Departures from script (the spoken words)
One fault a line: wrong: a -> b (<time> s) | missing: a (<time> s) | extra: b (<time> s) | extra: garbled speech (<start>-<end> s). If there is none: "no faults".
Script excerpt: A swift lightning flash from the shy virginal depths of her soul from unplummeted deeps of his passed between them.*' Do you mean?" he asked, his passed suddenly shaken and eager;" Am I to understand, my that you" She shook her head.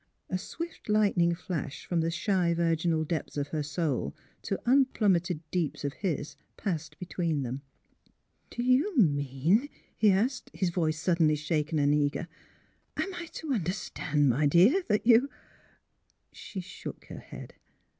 wrong: from -> to (4.4 s)
wrong: passed -> voice (10.7 s)
extra: dear (14.5 s)